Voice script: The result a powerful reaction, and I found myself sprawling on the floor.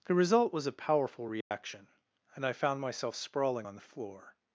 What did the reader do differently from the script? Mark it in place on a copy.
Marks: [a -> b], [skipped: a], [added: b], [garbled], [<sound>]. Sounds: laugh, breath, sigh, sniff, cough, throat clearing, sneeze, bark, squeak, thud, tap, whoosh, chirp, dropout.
The result [added: was] a powerful reaction, [dropout] and I found myself sprawling on the floor.